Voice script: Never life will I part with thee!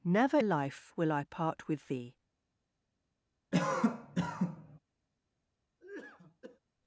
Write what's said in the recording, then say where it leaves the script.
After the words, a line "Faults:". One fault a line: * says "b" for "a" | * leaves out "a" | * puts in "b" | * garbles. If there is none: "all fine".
Never life will I part with thee!
Faults:
all fine